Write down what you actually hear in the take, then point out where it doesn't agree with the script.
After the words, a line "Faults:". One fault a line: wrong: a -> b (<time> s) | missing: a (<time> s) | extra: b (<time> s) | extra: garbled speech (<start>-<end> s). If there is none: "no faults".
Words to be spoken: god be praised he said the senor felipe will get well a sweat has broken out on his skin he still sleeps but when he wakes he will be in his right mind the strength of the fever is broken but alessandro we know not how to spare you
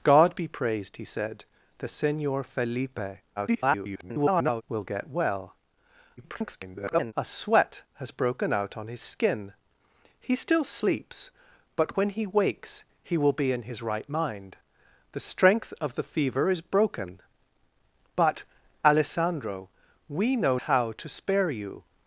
god be praised he said the senor felipe [garbled] will get well [garbled] a sweat has broken out on his skin he still sleeps but when he wakes he will be in his right mind the strength of the fever is broken but alessandro we know how to spare you
Faults:
extra: garbled speech (3.4-4.6 s)
extra: garbled speech (6.2-7.1 s)
missing: not (20.6 s)